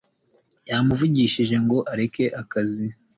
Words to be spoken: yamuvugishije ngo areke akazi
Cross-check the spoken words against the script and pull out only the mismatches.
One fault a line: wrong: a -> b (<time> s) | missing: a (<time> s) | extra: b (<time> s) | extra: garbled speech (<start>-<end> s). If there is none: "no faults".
no faults